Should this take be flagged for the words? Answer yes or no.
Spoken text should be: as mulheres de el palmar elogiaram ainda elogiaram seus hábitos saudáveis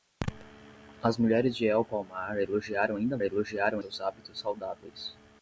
no